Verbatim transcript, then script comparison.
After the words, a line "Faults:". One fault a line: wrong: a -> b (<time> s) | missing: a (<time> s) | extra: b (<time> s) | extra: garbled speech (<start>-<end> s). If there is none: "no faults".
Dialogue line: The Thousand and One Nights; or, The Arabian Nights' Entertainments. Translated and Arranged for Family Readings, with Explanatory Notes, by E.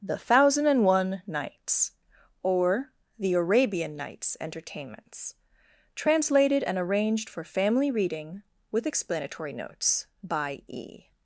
The Thousand and One Nights; or, The Arabian Nights' Entertainments. Translated and Arranged for Family Reading, with Explanatory Notes, by E.
Faults:
wrong: Readings -> Reading (7.9 s)